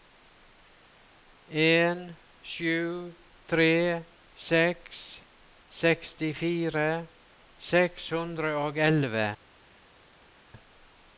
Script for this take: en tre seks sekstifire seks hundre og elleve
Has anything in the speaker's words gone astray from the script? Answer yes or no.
yes